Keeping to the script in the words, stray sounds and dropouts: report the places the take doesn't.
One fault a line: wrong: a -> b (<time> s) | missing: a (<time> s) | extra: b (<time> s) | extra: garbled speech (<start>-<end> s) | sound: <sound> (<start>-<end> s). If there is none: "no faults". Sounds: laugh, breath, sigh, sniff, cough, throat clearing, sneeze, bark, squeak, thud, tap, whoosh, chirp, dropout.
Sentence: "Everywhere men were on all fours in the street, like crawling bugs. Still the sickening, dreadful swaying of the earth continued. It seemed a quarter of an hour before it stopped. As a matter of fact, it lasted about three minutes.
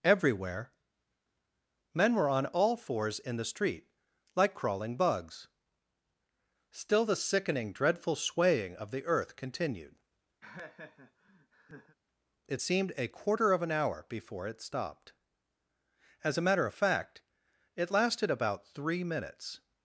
sound: laugh (10.4-12.0 s)